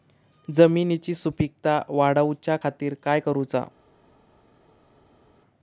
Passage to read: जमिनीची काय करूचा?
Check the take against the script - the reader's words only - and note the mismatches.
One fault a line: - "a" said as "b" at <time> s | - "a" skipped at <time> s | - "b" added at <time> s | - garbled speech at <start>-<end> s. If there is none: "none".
- "सुपीकता वाढवच्या खातीर" added at 1.1 s